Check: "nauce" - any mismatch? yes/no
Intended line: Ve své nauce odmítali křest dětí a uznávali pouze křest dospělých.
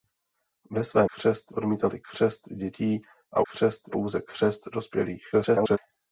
yes